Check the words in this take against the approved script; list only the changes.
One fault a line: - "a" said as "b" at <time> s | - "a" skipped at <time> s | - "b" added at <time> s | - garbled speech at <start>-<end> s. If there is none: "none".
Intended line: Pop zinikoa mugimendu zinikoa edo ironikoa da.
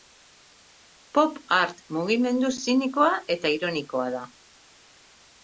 - "zinikoa" said as "art" at 1.6 s
- "edo" said as "eta" at 3.4 s